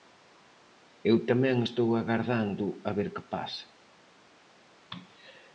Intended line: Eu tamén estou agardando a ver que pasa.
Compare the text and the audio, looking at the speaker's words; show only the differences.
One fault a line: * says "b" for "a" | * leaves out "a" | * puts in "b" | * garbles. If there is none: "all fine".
all fine